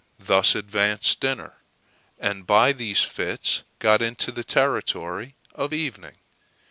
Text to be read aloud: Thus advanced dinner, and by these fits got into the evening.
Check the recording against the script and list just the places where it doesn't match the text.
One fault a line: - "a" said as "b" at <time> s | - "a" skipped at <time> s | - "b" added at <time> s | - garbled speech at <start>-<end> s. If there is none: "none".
- "territory of" added at 4.4 s